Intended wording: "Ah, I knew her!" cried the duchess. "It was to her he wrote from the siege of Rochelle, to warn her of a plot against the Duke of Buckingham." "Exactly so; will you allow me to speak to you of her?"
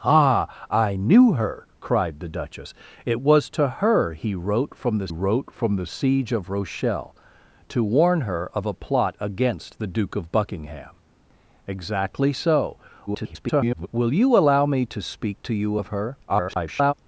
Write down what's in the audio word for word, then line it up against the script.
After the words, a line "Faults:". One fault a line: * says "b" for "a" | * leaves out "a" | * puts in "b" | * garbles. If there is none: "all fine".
"Ah, I knew her!" cried the duchess. "It was to her he wrote from the wrote from the siege of Rochelle, to warn her of a plot against the Duke of Buckingham." "Exactly so; [garbled] will you allow me to speak to you of her?" [garbled]
Faults:
* puts in "wrote from the"
* garbles
* garbles